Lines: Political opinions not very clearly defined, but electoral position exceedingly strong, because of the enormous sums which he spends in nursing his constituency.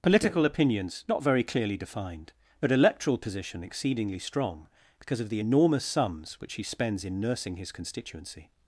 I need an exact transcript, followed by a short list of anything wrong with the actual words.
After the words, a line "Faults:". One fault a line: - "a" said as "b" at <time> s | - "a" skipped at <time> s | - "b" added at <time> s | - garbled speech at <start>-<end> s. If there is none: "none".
Political opinions not very clearly defined, but electoral position exceedingly strong, because of the enormous sums which he spends in nursing his constituency.
Faults:
none